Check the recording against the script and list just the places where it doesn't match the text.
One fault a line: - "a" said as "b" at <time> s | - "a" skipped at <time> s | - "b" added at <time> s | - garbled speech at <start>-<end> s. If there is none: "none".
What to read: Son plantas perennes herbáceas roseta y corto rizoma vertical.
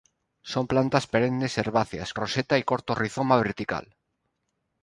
none